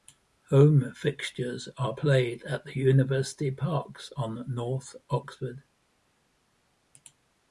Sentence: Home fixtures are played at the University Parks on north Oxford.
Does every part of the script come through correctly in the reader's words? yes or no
yes